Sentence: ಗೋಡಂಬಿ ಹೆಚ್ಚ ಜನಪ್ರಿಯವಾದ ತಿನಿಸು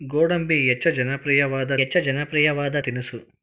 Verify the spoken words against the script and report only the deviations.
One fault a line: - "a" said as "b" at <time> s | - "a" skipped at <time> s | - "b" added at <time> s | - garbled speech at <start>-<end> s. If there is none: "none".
- "ಹೆಚ್ಚ ಜನಪ್ರಿಯವಾದ" added at 1.8 s